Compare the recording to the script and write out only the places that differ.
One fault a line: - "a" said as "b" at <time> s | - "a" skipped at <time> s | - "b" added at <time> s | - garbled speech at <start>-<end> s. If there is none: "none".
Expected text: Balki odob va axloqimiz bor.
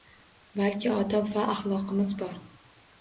none